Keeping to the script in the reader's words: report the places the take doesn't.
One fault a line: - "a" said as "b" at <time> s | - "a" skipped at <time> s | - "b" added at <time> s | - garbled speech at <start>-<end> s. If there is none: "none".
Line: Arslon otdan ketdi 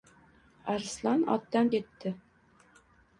none